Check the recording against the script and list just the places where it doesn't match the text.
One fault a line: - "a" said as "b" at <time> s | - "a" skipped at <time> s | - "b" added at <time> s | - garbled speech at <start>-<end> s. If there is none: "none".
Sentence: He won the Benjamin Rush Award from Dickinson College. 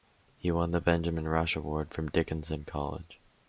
none